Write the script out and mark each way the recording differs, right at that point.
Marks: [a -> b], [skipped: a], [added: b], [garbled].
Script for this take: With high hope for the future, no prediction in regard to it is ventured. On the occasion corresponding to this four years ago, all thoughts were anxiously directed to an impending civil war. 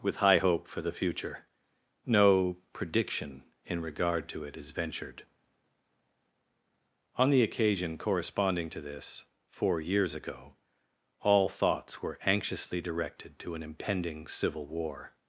With high hope for the future, no prediction in regard to it is ventured. On the occasion corresponding to this four years ago, all thoughts were anxiously directed to an impending civil war.